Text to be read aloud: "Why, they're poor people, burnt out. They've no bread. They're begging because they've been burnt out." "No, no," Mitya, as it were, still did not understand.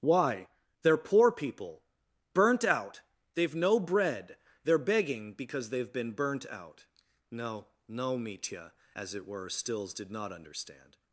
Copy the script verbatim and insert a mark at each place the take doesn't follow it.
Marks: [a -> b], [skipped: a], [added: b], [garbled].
"Why, they're poor people, burnt out. They've no bread. They're begging because they've been burnt out." "No, no," Mitya, as it were, [still -> stills] did not understand.